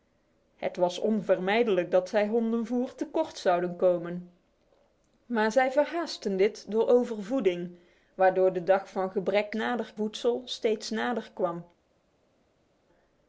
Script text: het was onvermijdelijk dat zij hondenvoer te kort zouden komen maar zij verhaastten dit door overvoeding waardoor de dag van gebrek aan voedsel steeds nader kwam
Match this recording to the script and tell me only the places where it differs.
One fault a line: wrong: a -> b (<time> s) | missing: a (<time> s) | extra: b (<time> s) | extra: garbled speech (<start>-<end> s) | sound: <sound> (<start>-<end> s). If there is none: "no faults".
wrong: aan -> nader (9.5 s)